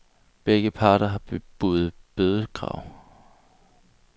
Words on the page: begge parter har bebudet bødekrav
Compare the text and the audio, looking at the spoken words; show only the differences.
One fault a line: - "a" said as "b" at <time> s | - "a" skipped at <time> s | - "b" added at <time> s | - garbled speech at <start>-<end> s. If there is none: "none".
none